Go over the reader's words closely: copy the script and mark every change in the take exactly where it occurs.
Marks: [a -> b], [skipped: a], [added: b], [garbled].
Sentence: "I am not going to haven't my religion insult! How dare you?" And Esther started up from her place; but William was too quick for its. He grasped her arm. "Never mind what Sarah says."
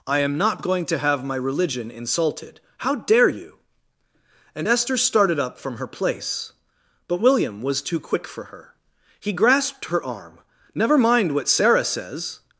"I am not going to [haven't -> have] my religion [insult! -> insulted] How dare you?" And Esther started up from her place; but William was too quick for [its. -> her] He grasped her arm. "Never mind what Sarah says."